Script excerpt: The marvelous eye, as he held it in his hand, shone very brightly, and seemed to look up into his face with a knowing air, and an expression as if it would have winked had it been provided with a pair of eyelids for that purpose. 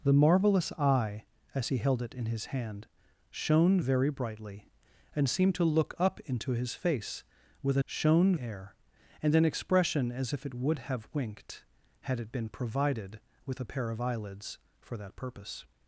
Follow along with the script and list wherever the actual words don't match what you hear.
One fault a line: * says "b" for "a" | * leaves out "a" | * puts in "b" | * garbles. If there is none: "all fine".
* says "shone" for "knowing"